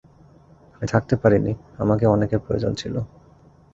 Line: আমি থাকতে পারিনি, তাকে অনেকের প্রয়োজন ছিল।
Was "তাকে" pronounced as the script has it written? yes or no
no